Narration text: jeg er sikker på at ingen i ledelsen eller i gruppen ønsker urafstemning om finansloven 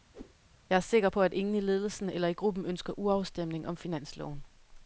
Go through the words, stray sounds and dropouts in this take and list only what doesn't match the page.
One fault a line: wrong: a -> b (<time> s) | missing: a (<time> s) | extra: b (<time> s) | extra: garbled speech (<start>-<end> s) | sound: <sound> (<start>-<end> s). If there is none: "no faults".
sound: whoosh (0.1-0.3 s)